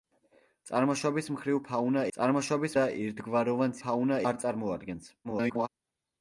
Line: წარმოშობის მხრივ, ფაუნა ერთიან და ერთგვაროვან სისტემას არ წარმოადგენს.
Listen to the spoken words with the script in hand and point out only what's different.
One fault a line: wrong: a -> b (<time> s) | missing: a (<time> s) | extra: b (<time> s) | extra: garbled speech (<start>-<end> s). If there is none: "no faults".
wrong: ერთიან -> წარმოშობის (2.2 s)
wrong: სისტემას -> ფაუნა (3.8 s)
extra: garbled speech (5.2-5.7 s)